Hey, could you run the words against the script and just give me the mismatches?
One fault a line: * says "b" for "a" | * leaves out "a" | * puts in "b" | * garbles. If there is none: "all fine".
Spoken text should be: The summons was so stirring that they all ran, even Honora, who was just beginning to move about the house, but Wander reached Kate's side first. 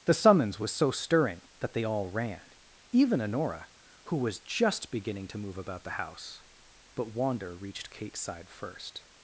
all fine